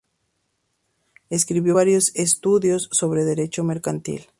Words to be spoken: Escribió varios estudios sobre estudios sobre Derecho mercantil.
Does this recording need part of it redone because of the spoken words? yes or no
yes